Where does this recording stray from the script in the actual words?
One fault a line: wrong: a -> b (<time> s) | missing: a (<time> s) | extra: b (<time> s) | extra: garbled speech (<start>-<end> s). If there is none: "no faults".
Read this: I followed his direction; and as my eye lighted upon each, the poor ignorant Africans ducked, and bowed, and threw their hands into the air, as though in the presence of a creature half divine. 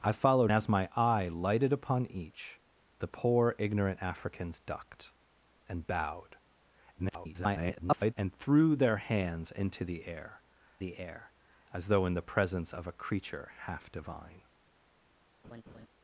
missing: his direction and (0.5 s)
extra: garbled speech (7.0-8.1 s)
extra: the air (10.8 s)